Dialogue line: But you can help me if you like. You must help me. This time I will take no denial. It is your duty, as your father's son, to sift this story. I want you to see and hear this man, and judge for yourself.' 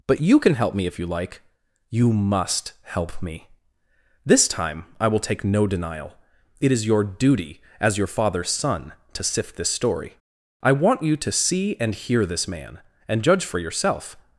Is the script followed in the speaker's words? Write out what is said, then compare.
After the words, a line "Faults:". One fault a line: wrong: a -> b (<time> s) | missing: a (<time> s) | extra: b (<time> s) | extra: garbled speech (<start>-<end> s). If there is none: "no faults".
But you can help me if you like. You must help me. This time I will take no denial. It is your duty, as your father's son, to sift this story. I want you to see and hear this man, and judge for yourself.'
Faults:
no faults